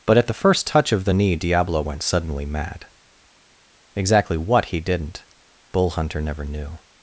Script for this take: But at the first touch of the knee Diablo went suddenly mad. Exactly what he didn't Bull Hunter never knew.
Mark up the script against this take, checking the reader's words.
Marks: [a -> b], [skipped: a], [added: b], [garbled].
But at the first touch of the knee Diablo went suddenly mad. Exactly what he didn't Bull Hunter never knew.